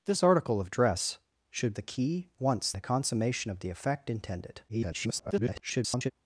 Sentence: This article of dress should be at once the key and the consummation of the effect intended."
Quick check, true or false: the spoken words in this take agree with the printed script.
false